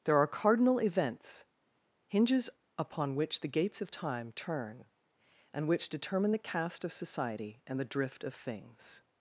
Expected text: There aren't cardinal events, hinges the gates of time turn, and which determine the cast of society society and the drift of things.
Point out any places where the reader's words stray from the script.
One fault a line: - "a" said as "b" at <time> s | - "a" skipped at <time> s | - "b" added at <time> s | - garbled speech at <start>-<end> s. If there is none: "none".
- "aren't" said as "are" at 0.2 s
- "upon which" added at 2.8 s
- "society" skipped at 7.6 s